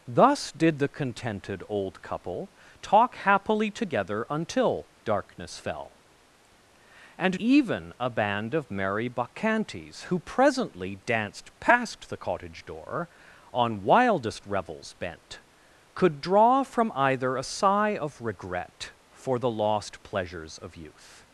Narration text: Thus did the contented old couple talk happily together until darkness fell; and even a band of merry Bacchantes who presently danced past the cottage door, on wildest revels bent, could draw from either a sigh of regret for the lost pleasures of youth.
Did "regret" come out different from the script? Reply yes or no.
no